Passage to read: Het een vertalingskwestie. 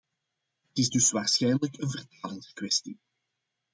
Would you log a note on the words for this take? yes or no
yes